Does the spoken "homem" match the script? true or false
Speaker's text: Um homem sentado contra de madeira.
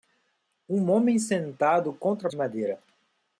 true